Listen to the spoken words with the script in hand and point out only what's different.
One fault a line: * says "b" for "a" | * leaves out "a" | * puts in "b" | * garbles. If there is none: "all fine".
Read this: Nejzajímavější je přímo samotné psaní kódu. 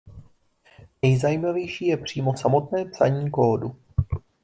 all fine